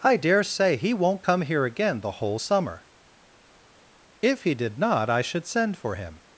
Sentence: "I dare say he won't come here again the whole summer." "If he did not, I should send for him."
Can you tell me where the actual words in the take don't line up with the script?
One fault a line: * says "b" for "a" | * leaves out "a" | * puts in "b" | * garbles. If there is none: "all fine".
all fine